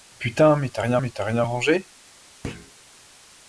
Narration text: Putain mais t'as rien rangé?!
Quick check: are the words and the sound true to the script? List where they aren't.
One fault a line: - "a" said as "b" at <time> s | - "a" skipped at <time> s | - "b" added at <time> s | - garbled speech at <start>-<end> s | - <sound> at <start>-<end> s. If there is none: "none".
- "mais t'as rien" added at 1.0 s
- thud at 2.4-2.7 s